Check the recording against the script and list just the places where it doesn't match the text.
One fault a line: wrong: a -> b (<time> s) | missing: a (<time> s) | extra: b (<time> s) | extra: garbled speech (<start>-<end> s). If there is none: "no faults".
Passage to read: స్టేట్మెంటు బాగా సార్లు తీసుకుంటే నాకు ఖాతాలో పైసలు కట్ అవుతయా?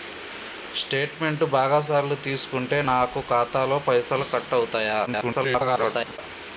extra: garbled speech (5.1-6.2 s)